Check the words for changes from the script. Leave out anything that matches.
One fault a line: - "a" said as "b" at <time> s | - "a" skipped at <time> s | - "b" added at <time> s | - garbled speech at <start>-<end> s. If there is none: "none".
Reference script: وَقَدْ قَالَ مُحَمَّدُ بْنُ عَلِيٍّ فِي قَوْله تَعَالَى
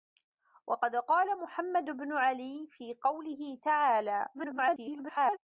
- garbled speech at 4.3-5.4 s